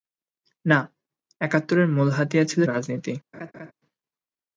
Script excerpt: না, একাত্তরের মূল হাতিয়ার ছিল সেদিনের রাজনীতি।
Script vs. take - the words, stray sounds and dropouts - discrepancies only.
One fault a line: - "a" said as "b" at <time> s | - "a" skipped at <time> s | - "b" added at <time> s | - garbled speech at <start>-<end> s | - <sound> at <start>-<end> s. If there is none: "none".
- "সেদিনের" skipped at 2.6 s
- laugh at 3.3-3.7 s